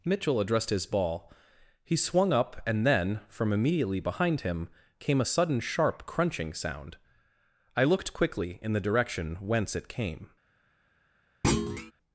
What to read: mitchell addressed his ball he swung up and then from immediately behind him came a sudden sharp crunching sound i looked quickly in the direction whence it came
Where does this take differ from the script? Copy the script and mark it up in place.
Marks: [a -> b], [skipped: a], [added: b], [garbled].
mitchell addressed his ball he swung up and then from immediately behind him came a sudden sharp crunching sound i looked quickly in the direction whence it came